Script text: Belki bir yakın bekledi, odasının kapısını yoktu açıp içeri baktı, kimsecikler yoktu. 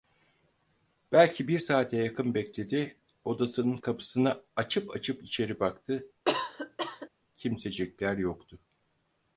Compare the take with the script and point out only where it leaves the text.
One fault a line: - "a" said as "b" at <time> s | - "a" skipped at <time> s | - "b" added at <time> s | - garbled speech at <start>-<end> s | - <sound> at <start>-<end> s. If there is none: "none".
- "saate" added at 1.6 s
- "yoktu" said as "açıp" at 4.5 s
- cough at 6.3-7.1 s